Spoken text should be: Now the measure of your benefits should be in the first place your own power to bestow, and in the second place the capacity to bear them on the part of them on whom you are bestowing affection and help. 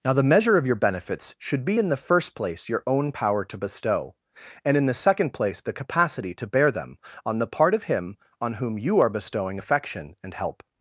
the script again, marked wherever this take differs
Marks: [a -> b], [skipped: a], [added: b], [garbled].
Now the measure of your benefits should be in the first place your own power to bestow, and in the second place the capacity to bear them on the part of [them -> him] on whom you are bestowing affection and help.